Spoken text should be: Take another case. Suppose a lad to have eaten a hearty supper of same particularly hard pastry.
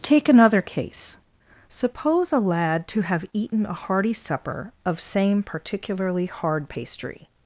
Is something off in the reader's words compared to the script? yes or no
no